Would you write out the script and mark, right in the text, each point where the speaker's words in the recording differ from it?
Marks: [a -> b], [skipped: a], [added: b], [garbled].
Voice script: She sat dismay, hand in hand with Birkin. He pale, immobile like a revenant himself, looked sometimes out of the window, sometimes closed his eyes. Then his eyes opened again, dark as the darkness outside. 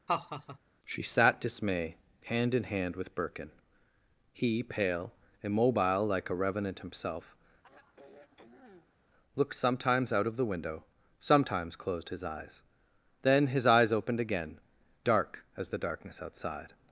She sat dismay, hand in hand with Birkin. He pale, immobile like a revenant himself, looked sometimes out of the window, sometimes closed his eyes. Then his eyes opened again, dark as the darkness outside.